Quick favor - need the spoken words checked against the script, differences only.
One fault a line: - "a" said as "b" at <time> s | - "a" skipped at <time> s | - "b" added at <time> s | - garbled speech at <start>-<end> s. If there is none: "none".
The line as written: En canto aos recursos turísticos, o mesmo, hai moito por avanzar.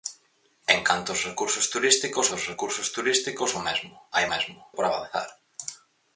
- "aos recursos turísticos" added at 2.3 s
- "moito" said as "mesmo" at 4.3 s